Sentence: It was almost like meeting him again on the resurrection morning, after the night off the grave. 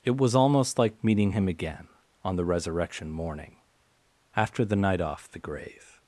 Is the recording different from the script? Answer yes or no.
no